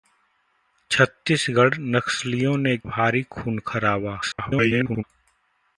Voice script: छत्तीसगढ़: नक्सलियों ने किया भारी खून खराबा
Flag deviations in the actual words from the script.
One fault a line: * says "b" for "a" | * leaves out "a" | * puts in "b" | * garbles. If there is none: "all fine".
* leaves out "किया"
* garbles